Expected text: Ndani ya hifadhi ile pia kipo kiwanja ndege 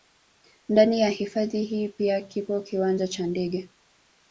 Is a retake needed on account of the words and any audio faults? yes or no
yes